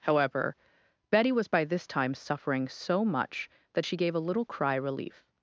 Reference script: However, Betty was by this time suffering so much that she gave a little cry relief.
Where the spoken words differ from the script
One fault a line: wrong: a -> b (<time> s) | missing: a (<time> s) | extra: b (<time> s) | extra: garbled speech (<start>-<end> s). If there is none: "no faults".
no faults